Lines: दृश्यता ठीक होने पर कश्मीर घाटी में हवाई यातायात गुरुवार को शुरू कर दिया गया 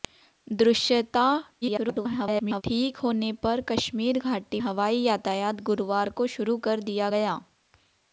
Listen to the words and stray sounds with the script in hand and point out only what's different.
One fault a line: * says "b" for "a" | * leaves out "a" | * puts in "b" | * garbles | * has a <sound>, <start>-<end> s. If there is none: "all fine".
* garbles
* leaves out "में"